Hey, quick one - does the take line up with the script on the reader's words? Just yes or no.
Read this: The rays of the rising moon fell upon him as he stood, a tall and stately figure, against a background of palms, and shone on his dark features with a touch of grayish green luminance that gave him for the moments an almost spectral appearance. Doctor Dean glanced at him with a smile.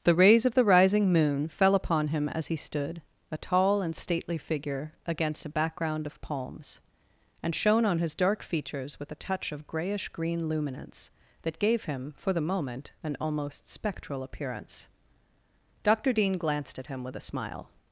no